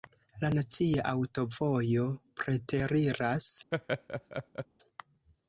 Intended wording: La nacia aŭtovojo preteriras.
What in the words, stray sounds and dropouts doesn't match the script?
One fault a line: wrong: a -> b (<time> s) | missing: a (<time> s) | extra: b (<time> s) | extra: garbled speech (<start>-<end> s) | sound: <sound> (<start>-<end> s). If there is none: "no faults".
sound: laugh (3.7-4.7 s)